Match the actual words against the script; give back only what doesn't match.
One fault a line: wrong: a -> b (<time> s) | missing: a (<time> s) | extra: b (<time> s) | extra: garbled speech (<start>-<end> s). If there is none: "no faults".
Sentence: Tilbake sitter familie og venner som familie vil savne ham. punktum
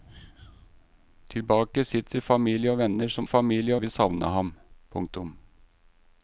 no faults